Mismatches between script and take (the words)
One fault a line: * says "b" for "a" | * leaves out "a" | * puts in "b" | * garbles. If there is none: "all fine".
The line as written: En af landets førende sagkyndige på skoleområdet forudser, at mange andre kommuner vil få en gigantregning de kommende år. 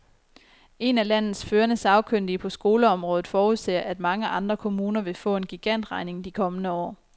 all fine